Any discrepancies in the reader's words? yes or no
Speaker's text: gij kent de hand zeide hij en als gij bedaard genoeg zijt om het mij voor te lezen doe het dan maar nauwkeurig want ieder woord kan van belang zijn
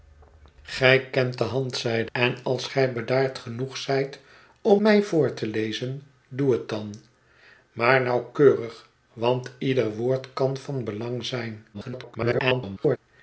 yes